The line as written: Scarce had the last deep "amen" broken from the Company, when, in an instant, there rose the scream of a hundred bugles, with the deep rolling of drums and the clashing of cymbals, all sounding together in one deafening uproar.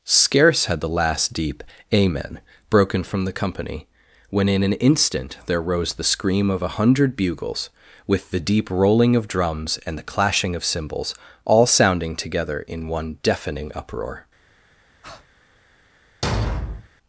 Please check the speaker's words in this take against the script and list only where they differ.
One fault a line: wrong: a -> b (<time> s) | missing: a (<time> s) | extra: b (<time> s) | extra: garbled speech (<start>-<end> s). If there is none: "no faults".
no faults